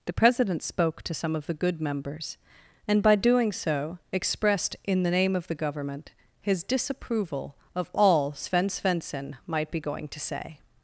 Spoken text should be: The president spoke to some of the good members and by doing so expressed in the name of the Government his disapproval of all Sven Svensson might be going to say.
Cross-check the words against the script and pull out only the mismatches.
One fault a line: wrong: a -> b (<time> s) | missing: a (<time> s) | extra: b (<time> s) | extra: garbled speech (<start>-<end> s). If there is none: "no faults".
no faults